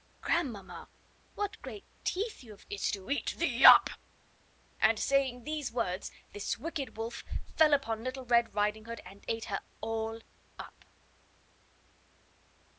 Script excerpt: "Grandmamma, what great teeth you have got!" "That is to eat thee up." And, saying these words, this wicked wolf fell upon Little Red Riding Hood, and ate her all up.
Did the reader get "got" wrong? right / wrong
wrong